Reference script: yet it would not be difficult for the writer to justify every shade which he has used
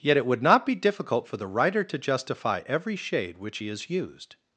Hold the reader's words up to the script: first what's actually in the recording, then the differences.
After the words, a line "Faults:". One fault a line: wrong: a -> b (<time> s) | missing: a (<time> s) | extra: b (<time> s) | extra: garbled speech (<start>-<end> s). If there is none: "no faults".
yet it would not be difficult for the writer to justify every shade which he has used
Faults:
no faults